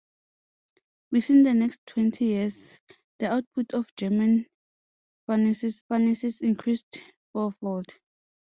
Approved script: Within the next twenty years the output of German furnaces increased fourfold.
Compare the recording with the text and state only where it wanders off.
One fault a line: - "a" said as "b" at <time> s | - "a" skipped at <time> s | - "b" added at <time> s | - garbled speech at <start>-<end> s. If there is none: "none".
- "furnaces" added at 5.9 s